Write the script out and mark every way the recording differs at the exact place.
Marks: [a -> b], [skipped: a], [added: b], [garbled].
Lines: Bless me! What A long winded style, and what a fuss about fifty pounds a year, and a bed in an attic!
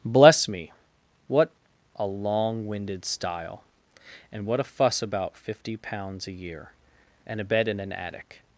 Bless me! What A long winded style, and what a fuss about fifty pounds a year, and a bed in an attic!